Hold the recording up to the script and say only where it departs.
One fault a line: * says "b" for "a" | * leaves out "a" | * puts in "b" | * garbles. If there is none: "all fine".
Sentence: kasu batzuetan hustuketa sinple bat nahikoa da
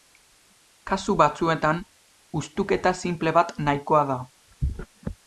all fine